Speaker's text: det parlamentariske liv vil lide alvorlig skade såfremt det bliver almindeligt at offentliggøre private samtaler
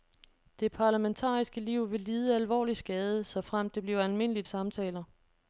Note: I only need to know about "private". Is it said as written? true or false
false